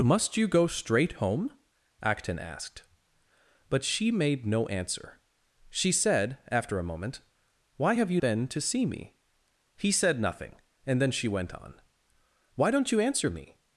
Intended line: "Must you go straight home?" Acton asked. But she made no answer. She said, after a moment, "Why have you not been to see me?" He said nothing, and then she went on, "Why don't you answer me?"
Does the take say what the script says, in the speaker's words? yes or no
no